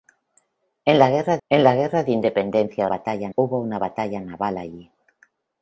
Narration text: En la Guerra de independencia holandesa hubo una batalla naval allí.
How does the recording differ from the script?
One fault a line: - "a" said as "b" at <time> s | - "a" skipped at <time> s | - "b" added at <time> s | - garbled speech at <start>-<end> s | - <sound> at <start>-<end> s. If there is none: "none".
- "en la Guerra" added at 1.5 s
- "holandesa" said as "batalla" at 2.9 s